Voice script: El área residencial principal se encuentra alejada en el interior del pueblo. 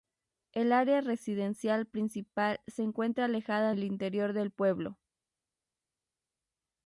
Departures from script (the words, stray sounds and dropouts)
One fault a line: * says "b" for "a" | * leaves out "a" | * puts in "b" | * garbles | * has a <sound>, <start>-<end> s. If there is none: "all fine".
* leaves out "en"